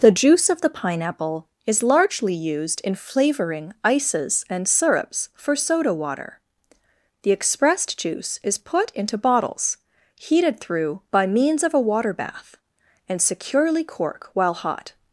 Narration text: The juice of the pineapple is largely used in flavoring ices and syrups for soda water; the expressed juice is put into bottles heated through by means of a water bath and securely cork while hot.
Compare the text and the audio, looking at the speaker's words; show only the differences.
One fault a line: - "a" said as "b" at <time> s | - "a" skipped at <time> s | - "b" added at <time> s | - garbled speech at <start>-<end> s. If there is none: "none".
none